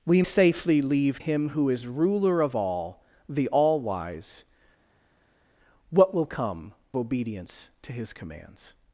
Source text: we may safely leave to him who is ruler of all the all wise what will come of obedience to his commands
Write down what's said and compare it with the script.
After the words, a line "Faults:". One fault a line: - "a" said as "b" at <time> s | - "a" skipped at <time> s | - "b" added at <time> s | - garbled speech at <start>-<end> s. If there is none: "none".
we safely leave him who is ruler of all the all wise what will come obedience to his commands
Faults:
- "may" skipped at 0.2 s
- "to" skipped at 1.2 s
- "of" skipped at 6.7 s